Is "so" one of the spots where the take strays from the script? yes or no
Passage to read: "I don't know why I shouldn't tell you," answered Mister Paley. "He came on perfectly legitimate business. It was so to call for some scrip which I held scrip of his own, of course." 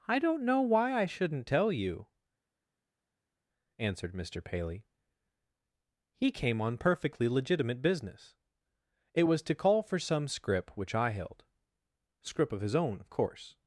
yes